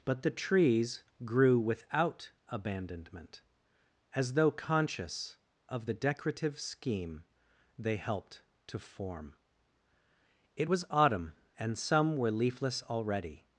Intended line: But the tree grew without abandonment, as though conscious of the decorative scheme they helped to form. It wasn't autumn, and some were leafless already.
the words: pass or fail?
fail